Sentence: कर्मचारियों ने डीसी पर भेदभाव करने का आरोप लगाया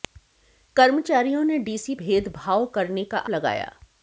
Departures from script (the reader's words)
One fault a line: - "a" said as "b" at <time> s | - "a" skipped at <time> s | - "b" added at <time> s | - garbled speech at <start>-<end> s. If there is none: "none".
- "पर" skipped at 1.9 s
- "आरोप" skipped at 3.2 s